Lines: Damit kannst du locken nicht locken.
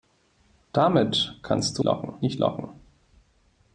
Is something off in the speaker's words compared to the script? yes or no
no